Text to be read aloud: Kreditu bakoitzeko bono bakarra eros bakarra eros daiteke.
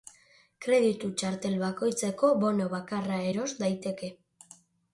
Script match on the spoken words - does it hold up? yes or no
no